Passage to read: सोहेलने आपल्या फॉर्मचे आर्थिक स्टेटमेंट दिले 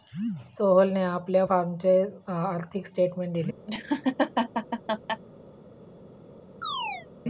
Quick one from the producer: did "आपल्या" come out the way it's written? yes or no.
yes